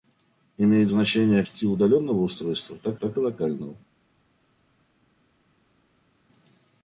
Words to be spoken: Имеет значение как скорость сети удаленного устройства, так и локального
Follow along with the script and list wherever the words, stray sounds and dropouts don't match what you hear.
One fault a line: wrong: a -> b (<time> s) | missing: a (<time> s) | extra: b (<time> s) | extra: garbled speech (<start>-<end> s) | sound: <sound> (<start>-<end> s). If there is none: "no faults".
missing: как скорость (1.4 s)
extra: так (3.0 s)